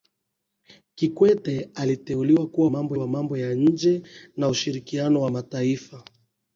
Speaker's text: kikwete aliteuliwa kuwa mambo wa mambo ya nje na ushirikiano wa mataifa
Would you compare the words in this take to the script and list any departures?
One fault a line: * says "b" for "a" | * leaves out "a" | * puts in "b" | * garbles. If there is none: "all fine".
all fine